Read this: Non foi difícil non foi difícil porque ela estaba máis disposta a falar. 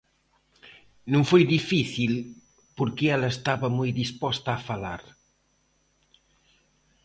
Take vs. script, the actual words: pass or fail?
fail